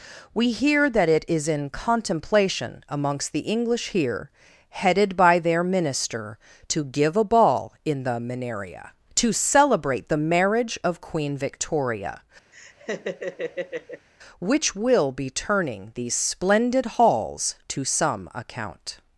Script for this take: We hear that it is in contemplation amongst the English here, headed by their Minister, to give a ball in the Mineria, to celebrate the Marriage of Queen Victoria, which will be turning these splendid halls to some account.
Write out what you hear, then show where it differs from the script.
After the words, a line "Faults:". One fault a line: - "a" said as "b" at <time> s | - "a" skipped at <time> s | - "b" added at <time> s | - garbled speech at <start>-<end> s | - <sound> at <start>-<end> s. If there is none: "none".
We hear that it is in contemplation amongst the English here, headed by their Minister, to give a ball in the Mineria, to celebrate the Marriage of Queen Victoria, which will be turning these splendid halls to some account.
Faults:
- laugh at 12.5-14.1 s